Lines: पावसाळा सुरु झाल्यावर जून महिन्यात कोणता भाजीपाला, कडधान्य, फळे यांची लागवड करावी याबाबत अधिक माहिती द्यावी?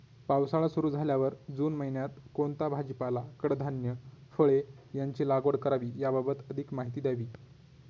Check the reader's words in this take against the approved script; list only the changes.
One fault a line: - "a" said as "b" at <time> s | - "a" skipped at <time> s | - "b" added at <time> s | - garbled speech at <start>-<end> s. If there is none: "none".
none